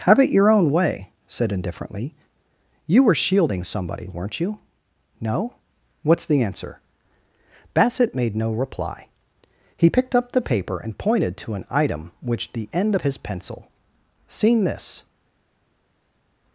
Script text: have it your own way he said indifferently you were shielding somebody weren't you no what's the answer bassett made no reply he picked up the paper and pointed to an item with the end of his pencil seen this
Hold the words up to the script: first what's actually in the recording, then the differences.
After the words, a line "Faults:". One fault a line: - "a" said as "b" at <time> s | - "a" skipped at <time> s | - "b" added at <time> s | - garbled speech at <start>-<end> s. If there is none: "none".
have it your own way said indifferently you were shielding somebody weren't you no what's the answer bassett made no reply he picked up the paper and pointed to an item which the end of his pencil seen this
Faults:
- "he" skipped at 1.1 s
- "with" said as "which" at 12.2 s